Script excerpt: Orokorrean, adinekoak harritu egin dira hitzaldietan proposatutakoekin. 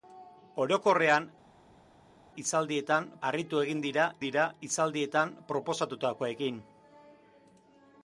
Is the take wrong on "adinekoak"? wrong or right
wrong